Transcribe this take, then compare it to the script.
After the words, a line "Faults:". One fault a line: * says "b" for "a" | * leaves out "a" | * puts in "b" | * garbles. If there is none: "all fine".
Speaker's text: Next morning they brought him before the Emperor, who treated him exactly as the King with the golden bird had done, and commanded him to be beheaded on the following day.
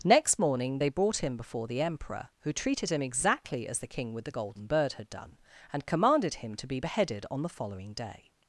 Next morning they brought him before the Emperor, who treated him exactly as the King with the golden bird had done, and commanded him to be beheaded on the following day.
Faults:
all fine